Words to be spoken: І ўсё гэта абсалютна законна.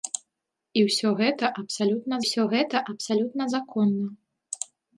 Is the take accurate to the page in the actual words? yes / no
no